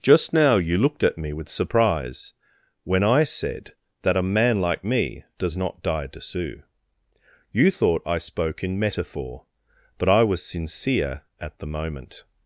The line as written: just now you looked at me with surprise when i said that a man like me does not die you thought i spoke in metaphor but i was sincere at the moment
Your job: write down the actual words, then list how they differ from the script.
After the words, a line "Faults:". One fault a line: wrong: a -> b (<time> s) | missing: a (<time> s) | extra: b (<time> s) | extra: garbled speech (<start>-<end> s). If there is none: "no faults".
just now you looked at me with surprise when i said that a man like me does not die to sue you thought i spoke in metaphor but i was sincere at the moment
Faults:
extra: to sue (6.1 s)